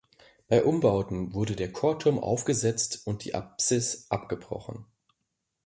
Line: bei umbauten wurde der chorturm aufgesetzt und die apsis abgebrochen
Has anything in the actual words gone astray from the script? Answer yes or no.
no